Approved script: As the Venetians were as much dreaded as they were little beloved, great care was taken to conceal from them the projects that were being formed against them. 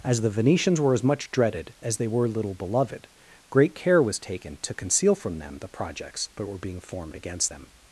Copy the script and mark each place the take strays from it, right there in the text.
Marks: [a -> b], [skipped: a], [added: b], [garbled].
As the Venetians were as much dreaded as they were little beloved, great care was taken to conceal from them the projects that were being formed against them.